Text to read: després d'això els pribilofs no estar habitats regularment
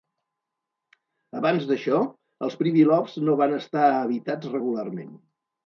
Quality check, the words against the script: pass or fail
fail